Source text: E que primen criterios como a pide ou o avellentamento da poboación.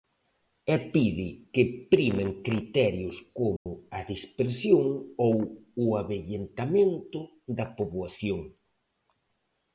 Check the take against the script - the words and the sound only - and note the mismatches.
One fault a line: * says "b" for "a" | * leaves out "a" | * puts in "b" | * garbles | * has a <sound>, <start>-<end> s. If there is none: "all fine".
* puts in "pide"
* has a dropout, 3.6-3.7 s
* says "dispersión" for "pide"